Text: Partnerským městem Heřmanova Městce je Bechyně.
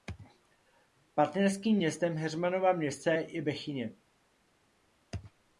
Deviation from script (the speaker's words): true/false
false